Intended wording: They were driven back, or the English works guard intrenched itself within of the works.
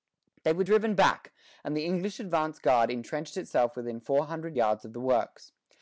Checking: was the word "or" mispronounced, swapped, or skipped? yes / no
yes